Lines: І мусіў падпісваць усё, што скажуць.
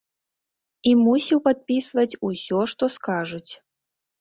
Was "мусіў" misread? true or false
false